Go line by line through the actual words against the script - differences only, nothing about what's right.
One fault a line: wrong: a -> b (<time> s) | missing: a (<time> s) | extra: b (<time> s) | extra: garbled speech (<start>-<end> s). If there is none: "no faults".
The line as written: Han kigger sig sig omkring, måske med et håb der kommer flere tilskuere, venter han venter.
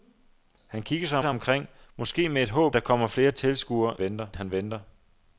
no faults